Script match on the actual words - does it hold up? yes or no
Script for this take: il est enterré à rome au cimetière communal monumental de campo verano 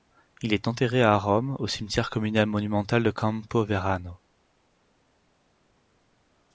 yes